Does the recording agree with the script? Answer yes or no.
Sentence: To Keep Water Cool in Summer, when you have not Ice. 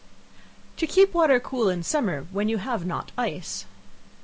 yes